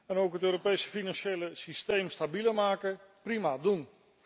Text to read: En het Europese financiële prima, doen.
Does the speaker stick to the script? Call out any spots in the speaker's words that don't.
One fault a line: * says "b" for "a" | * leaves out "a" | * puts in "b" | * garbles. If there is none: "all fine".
* puts in "ook"
* puts in "systeem stabieler maken"